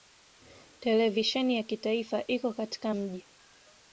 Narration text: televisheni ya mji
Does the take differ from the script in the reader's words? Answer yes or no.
yes